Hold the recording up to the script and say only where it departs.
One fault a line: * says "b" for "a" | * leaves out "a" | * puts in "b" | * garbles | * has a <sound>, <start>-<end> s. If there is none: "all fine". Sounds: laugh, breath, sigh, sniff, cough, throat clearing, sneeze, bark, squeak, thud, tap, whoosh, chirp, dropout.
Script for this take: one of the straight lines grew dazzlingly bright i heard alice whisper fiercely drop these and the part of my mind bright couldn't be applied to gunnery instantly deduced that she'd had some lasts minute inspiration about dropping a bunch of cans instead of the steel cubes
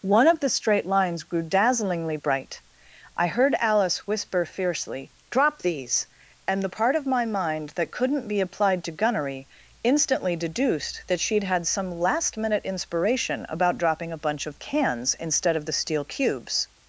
* says "that" for "bright"
* says "last" for "lasts"